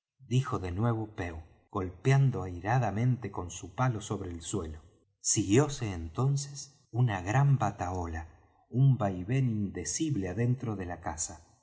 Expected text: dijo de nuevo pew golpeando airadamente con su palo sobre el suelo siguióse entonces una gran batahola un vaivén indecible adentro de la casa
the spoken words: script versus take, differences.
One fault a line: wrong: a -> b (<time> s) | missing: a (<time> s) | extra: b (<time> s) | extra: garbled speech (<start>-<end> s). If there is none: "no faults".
no faults